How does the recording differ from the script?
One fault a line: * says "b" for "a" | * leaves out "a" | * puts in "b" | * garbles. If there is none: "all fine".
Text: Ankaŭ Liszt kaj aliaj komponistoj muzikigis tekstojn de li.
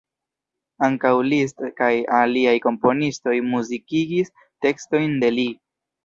all fine